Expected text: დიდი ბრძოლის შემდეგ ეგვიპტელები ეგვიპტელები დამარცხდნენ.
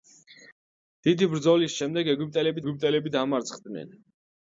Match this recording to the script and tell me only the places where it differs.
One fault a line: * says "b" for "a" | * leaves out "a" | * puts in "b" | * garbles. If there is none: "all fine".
all fine